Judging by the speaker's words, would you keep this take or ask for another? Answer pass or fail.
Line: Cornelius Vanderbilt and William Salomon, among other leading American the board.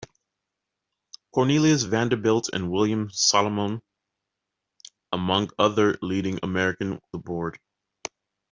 pass